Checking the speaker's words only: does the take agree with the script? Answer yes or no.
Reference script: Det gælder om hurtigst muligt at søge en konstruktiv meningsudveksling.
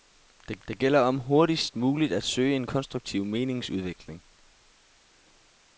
no